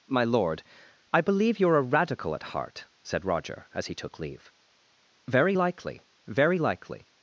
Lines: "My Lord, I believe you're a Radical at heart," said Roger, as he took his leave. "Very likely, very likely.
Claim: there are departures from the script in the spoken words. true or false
true